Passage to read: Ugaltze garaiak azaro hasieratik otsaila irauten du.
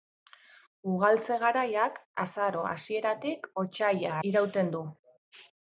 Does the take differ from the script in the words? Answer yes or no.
no